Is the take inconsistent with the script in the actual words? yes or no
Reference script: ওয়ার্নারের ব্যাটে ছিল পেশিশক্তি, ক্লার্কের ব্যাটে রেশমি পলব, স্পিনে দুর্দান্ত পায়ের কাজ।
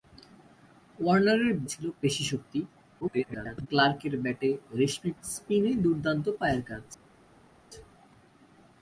yes